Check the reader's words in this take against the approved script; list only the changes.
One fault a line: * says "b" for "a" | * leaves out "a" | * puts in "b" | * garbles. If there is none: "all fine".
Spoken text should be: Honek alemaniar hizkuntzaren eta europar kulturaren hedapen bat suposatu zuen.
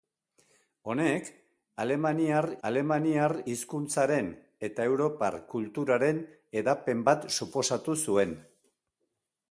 * puts in "alemaniar"